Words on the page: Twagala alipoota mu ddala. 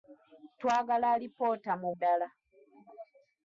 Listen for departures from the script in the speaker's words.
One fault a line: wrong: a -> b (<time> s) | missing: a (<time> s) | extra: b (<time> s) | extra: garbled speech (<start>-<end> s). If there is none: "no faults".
no faults